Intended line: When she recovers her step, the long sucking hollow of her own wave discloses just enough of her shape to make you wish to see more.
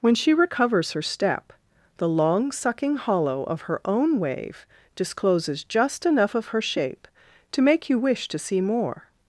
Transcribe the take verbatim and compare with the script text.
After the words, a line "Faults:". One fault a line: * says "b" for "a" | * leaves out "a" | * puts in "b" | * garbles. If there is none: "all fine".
When she recovers her step, the long sucking hollow of her own wave discloses just enough of her shape to make you wish to see more.
Faults:
all fine